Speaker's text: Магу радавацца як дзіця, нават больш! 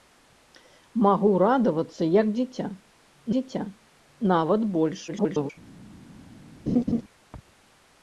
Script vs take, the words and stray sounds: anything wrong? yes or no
yes